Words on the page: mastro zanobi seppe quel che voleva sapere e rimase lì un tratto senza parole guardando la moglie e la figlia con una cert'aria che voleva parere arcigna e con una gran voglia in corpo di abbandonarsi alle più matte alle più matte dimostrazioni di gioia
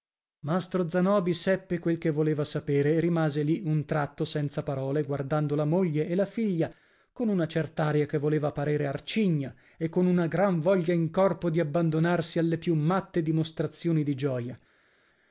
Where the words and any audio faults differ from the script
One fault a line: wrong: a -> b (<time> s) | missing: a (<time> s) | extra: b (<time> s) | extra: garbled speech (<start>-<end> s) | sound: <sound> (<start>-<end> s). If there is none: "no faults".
missing: alle più matte (13.2 s)